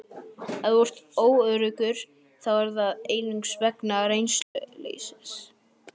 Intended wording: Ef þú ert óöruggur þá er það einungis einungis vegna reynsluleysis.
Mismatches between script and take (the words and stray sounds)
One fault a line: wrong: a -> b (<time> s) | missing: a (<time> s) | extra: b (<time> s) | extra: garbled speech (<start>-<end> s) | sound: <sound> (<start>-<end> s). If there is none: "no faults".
missing: einungis (3.6 s)
sound: dropout (4.4-4.6 s)